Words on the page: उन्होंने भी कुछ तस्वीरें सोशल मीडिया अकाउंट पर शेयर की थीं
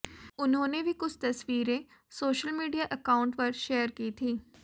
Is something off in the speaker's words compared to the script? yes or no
no